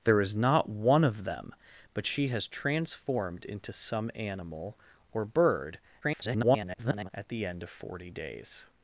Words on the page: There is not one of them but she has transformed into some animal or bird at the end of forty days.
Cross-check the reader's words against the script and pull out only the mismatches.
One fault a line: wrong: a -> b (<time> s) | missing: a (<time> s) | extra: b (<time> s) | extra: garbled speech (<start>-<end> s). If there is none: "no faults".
extra: garbled speech (6.0-7.1 s)